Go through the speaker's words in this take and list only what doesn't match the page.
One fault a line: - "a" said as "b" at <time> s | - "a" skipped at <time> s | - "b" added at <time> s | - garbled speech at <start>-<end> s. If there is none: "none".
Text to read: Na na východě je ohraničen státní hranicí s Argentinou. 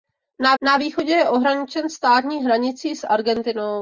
none